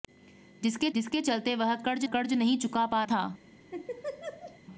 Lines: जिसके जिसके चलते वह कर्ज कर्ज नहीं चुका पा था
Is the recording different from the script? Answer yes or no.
no